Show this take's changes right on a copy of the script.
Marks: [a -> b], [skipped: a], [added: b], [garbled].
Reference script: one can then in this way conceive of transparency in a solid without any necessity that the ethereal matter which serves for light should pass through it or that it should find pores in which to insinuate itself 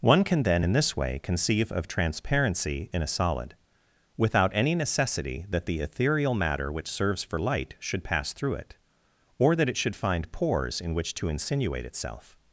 one can then in this way conceive of transparency in a solid without any necessity that the ethereal matter which serves for light should pass through it or that it should find pores in which to insinuate itself